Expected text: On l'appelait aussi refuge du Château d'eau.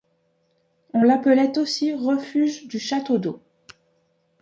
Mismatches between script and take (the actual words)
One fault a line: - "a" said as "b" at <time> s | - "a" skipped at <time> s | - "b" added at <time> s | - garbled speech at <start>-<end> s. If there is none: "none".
none